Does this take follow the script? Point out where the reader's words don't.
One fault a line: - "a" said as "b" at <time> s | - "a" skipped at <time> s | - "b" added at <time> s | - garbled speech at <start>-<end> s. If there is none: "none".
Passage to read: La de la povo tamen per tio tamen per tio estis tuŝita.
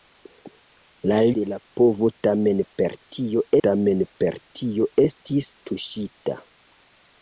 none